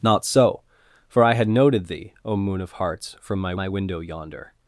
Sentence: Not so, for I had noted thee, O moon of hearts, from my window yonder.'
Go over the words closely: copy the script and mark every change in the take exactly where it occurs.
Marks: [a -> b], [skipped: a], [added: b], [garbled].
Not so, for I had noted thee, O moon of hearts, from my [added: my] window yonder.'